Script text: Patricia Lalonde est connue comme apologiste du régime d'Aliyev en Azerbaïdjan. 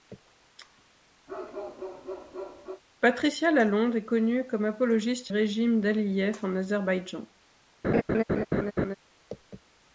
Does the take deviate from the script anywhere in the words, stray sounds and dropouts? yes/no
yes